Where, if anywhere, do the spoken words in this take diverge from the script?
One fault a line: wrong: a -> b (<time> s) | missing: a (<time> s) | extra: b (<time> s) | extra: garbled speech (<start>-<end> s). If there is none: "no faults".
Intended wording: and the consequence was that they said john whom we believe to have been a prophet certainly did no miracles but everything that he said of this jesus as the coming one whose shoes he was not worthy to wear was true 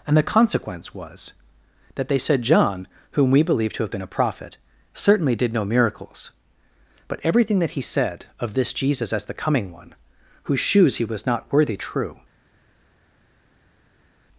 missing: to wear was (11.8 s)